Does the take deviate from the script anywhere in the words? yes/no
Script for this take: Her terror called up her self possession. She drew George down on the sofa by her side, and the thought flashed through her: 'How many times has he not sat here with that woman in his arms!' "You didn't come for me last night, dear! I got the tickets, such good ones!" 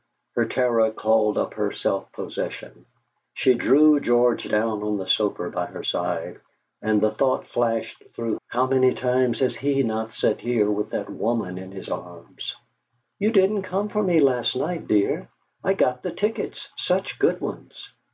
yes